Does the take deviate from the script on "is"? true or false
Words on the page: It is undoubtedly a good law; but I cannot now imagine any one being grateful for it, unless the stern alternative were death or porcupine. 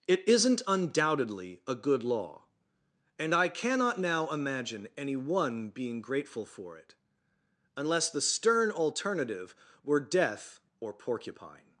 true